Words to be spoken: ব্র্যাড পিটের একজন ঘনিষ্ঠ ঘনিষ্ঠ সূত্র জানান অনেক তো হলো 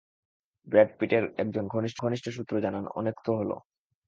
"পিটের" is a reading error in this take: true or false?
false